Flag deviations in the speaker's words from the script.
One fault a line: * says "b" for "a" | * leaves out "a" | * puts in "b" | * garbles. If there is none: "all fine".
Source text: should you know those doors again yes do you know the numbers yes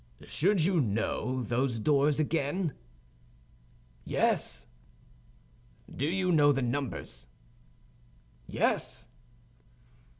all fine